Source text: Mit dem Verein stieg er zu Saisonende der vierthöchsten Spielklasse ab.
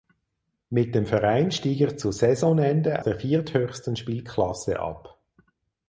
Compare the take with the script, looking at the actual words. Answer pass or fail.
pass